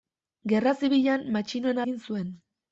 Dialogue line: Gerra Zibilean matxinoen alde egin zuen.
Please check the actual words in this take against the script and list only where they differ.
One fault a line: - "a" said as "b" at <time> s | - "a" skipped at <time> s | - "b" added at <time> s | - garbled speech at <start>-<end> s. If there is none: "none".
- "alde" skipped at 1.9 s